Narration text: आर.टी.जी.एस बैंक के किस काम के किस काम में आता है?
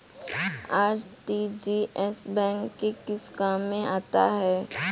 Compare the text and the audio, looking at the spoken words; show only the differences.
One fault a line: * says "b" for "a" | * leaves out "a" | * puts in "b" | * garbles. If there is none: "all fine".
* leaves out "के किस काम"